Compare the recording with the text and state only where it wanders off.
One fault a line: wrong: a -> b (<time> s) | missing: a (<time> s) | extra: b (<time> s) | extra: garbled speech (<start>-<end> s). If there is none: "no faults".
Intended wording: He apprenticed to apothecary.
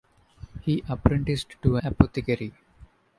no faults